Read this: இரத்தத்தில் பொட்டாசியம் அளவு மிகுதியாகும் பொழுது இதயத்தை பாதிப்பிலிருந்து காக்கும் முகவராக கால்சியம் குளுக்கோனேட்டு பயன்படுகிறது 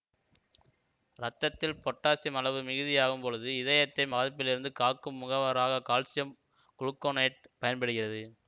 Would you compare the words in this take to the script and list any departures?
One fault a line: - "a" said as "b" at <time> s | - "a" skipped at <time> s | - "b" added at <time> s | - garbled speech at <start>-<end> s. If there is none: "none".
none